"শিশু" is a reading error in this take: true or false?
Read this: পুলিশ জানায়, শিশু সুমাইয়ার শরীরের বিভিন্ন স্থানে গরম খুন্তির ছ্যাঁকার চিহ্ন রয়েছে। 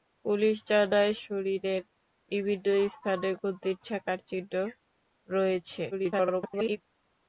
true